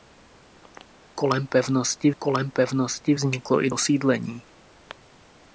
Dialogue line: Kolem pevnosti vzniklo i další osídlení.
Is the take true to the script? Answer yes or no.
no